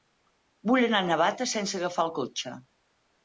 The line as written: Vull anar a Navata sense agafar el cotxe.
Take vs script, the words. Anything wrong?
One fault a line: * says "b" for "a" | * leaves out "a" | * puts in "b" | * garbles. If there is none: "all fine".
all fine